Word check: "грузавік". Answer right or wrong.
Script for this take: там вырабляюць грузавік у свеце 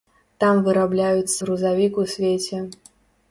right